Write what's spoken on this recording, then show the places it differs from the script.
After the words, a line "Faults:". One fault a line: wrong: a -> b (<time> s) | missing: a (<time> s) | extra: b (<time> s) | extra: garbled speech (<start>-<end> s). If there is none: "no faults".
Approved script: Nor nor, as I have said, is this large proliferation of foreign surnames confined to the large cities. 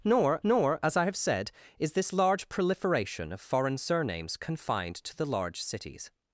Nor nor, as I have said, is this large proliferation of foreign surnames confined to the large cities.
Faults:
no faults